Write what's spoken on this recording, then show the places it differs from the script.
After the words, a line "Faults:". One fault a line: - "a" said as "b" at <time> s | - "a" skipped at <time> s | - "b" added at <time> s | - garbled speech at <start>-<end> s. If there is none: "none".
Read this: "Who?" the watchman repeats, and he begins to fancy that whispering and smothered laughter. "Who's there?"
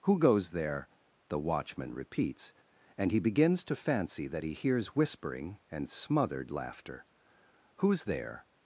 "Who goes there?" the watchman repeats, and he begins to fancy that he hears whispering and smothered laughter. "Who's there?"
Faults:
- "goes there" added at 0.2 s
- "he hears" added at 4.4 s